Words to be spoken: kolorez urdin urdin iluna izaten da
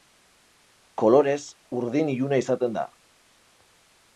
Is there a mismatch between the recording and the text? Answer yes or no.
yes